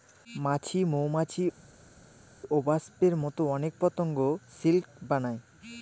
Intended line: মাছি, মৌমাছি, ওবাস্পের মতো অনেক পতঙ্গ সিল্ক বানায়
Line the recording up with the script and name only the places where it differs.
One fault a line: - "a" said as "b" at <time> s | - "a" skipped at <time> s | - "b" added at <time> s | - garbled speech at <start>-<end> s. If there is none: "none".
none